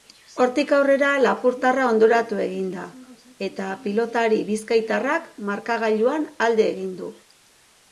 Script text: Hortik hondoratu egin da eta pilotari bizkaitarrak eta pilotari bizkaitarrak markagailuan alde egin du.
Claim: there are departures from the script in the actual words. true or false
true